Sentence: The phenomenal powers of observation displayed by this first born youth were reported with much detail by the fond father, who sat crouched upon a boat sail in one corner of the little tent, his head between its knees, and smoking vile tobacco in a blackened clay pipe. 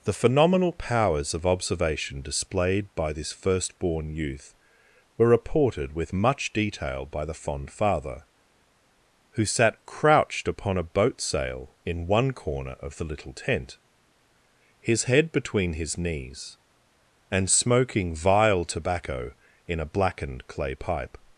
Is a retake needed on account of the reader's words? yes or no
yes